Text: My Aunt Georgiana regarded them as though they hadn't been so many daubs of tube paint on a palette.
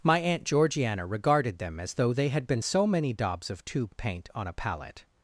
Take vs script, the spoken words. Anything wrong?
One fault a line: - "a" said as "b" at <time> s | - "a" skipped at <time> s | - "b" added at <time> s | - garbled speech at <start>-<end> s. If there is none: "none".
- "hadn't" said as "had" at 2.3 s